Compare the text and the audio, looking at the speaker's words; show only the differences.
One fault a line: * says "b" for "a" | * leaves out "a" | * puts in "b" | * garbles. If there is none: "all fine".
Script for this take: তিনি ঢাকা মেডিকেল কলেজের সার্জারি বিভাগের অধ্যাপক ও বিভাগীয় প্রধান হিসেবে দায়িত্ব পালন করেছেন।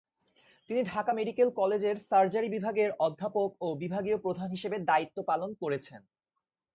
all fine